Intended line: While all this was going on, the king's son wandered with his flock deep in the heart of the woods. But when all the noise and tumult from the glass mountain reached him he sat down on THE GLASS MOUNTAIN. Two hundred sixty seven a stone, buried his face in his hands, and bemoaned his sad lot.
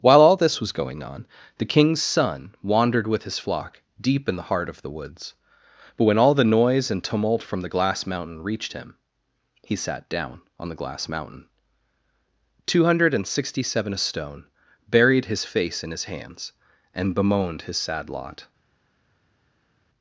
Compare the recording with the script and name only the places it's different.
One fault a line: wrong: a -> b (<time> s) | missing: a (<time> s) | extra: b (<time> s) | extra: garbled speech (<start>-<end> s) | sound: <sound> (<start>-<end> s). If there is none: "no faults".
extra: and (13.1 s)